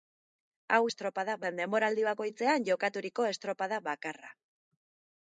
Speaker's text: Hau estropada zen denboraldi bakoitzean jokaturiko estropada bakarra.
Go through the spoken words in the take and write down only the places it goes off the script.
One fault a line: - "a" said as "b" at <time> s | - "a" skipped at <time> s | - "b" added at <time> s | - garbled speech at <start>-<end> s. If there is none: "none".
none